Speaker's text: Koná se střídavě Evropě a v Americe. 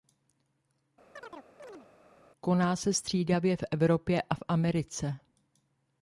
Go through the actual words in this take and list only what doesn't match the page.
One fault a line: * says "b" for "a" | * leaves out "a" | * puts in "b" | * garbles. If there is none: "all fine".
* puts in "v"